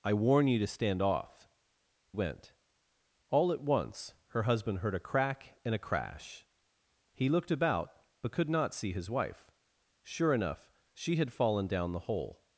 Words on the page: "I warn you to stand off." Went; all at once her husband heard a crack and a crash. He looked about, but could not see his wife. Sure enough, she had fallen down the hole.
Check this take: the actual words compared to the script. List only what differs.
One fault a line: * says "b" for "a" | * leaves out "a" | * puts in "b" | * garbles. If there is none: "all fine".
all fine